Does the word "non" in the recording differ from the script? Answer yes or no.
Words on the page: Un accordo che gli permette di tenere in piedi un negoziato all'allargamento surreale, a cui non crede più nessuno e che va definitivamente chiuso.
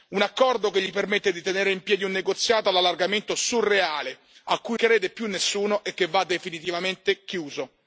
yes